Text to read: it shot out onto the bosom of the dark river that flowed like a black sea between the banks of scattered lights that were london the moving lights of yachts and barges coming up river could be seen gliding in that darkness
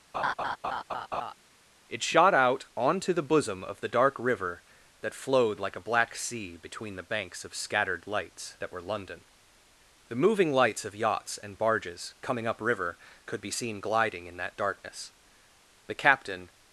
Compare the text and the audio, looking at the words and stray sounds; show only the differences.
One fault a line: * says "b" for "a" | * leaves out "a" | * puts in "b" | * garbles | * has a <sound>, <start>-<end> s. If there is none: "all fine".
* has a laugh, 0.1-1.3 s
* puts in "the captain"